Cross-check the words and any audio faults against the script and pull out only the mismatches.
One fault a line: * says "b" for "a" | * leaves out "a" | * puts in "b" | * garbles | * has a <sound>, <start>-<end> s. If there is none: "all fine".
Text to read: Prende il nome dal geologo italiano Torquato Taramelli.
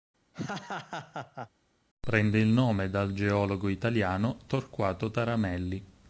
* has a laugh, 0.3-1.5 s